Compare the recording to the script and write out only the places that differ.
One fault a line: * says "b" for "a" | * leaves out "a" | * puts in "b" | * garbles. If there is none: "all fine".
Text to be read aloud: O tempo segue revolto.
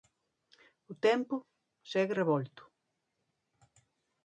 all fine